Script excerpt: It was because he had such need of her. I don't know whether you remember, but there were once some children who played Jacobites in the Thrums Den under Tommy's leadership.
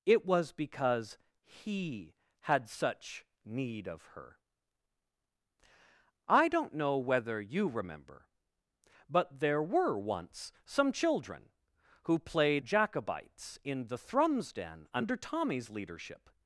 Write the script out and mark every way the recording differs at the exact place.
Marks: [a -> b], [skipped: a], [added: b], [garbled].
It was because he had such need of her. I don't know whether you remember, but there were once some children who played Jacobites in the Thrums Den under Tommy's leadership.